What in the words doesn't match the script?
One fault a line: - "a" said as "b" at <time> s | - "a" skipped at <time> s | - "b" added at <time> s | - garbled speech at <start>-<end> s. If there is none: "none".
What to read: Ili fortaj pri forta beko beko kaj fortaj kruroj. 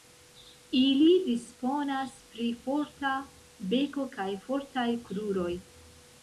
- "fortaj" said as "disponas" at 1.3 s
- "beko" skipped at 4.1 s